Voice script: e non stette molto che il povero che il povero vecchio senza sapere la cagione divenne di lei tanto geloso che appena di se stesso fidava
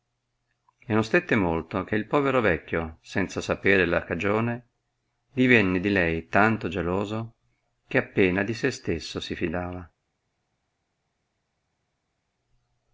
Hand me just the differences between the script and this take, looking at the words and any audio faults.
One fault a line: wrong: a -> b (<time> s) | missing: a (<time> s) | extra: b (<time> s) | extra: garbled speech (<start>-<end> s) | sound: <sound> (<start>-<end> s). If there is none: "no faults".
missing: che il povero (2.4 s)
extra: si (9.2 s)